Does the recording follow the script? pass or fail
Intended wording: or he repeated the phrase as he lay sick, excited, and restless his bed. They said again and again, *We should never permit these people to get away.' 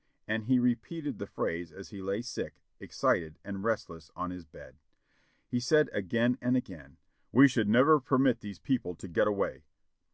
fail